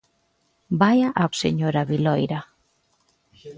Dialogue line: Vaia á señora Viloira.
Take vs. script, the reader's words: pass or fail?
pass